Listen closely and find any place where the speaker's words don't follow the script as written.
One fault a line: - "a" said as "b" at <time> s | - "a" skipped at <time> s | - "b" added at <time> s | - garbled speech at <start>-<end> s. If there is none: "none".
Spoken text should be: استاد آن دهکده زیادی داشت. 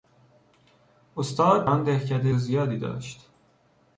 none